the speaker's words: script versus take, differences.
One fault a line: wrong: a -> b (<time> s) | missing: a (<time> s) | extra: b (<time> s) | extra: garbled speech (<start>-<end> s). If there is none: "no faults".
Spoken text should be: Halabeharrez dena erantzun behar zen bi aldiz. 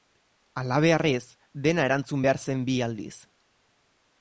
no faults